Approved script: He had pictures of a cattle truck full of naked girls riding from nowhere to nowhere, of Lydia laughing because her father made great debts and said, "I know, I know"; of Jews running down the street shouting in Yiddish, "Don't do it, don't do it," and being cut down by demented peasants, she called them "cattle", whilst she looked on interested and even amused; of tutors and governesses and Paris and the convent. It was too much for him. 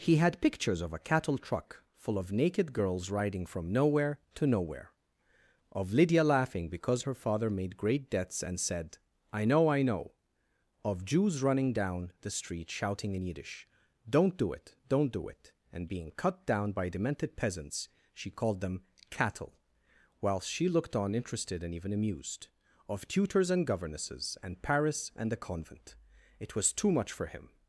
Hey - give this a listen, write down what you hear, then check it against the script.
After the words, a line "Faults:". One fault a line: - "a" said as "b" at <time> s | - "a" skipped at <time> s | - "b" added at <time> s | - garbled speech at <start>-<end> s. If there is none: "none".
He had pictures of a cattle truck full of naked girls riding from nowhere to nowhere, of Lydia laughing because her father made great debts and said, "I know, I know"; of Jews running down the street shouting in Yiddish, "Don't do it, don't do it," and being cut down by demented peasants, she called them "cattle", whilst she looked on interested and even amused; of tutors and governesses and Paris and the convent. It was too much for him.
Faults:
none